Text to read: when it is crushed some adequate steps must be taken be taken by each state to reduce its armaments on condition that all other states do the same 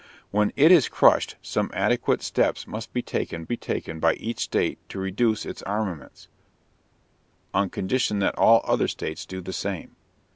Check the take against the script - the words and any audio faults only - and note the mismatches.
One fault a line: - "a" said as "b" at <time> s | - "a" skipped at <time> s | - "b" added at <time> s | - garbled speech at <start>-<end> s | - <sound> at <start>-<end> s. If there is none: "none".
none